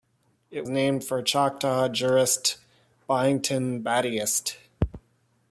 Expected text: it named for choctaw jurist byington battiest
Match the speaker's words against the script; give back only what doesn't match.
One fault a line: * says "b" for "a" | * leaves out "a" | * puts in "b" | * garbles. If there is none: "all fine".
all fine